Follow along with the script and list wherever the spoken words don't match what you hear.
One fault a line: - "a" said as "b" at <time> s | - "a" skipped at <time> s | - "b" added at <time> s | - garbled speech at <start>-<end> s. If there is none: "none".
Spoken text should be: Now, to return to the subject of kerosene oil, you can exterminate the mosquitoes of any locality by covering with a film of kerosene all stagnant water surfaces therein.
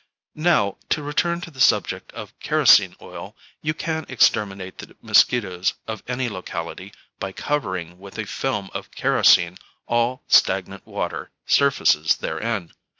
none